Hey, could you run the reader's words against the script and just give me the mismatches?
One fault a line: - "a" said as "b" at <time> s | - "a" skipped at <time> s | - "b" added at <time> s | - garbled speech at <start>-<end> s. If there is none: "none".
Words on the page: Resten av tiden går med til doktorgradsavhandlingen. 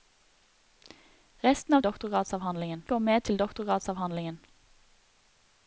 - "tiden" said as "doktorgradsavhandlingen" at 1.8 s